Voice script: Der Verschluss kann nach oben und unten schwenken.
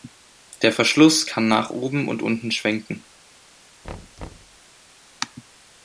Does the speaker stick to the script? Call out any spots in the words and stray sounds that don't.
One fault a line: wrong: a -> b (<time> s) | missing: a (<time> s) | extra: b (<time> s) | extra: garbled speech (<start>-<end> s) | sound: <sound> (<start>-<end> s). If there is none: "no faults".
sound: thud (3.8-4.6 s)